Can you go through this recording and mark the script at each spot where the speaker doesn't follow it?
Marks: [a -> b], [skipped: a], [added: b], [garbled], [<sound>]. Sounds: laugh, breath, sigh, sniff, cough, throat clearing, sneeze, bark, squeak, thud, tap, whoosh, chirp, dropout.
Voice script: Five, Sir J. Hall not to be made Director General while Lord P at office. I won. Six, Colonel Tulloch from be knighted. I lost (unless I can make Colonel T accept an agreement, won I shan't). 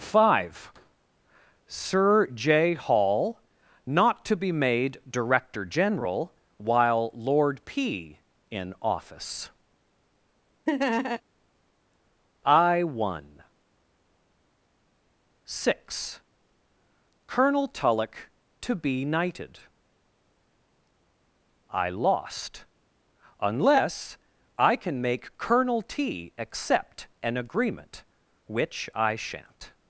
Five, Sir J. Hall not to be made Director General while Lord P [at -> in] office. [laugh] I won. Six, Colonel Tulloch [from -> to] be knighted. I lost (unless I can make Colonel T accept an agreement, [won -> which] I shan't).